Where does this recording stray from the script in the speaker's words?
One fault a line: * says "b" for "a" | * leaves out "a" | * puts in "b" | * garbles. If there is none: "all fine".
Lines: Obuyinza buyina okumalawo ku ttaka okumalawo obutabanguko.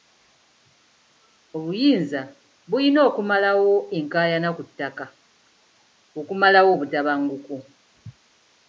* puts in "enkaayana"